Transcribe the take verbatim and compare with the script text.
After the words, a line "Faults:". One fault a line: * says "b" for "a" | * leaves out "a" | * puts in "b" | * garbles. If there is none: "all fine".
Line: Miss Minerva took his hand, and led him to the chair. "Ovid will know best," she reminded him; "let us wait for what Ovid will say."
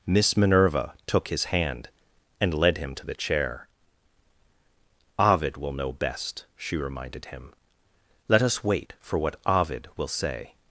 Miss Minerva took his hand, and led him to the chair. "Ovid will know best," she reminded him; "let us wait for what Ovid will say."
Faults:
all fine